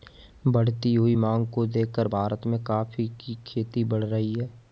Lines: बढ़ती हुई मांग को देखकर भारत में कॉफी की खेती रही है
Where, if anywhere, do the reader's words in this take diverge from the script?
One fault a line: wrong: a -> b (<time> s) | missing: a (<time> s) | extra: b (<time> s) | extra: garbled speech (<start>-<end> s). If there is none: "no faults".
extra: बढ़ (3.8 s)